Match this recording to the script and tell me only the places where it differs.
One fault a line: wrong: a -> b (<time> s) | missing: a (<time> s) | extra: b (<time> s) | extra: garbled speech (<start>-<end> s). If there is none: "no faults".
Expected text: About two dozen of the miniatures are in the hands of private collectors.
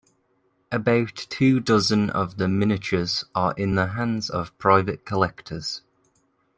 no faults